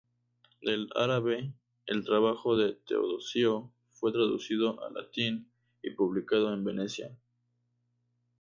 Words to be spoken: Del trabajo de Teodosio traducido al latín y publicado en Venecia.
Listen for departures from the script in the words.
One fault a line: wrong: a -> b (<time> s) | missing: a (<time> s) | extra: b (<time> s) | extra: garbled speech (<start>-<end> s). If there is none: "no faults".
extra: árabe el (0.9 s)
extra: fue (3.9 s)